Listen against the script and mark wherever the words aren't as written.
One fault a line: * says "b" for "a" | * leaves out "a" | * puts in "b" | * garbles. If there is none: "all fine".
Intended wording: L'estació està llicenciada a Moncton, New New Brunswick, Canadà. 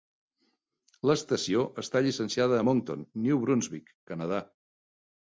* leaves out "New"